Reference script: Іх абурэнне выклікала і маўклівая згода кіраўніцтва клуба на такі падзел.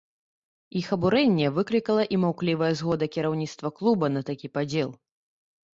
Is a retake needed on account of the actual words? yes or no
no